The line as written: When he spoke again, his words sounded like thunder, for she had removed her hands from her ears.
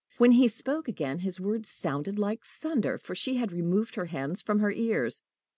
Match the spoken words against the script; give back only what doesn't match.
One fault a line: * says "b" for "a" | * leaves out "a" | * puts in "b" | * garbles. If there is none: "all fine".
all fine